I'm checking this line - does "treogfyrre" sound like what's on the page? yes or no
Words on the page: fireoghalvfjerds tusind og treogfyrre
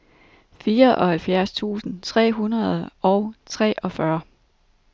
yes